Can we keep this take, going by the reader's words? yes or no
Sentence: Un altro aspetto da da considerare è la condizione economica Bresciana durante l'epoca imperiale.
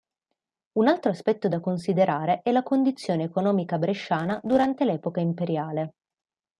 no